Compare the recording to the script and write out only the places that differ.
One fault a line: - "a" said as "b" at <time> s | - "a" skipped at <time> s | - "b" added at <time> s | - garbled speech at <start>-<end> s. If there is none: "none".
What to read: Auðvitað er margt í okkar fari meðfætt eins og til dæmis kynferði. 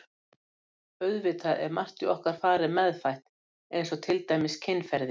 none